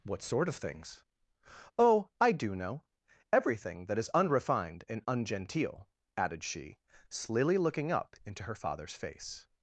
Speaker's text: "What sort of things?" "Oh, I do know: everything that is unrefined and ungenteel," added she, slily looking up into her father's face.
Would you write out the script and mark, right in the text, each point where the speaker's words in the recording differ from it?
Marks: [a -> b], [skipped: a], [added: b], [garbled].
"What sort of things?" "Oh, I do know: everything that is unrefined and ungenteel," added she, slily looking up into her father's face.